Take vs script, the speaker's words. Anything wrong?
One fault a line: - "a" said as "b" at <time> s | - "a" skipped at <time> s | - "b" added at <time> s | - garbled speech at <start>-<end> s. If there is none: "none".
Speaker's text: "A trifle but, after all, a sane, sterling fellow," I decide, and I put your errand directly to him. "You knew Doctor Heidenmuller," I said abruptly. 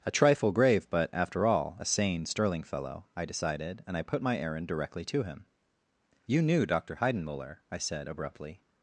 - "grave" added at 0.5 s
- "decide" said as "decided" at 3.2 s
- "your" said as "my" at 4.2 s